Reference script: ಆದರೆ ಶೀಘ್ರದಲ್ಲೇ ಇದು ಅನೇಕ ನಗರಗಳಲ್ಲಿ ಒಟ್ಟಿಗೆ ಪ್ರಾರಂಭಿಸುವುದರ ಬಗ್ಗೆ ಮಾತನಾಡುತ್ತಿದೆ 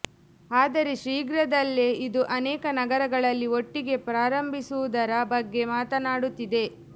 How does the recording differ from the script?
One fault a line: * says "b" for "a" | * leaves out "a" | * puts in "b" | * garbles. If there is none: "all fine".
all fine